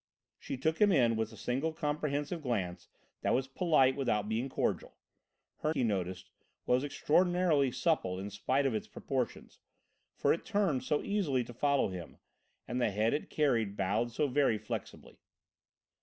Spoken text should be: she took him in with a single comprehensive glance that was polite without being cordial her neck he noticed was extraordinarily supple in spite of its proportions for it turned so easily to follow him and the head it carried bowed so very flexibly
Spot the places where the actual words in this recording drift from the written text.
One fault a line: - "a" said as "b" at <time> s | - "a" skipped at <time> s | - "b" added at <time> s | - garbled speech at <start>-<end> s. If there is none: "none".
- "neck" skipped at 5.8 s